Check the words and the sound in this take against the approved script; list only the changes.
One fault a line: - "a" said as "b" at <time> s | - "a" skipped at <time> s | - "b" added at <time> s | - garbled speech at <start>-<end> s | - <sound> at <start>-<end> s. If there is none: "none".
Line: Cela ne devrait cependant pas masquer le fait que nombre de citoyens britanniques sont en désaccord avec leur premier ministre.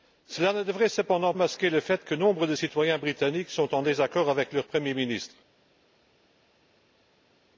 - "pas" skipped at 1.3 s